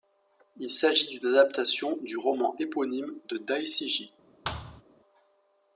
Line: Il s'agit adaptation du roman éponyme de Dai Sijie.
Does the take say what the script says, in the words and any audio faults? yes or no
no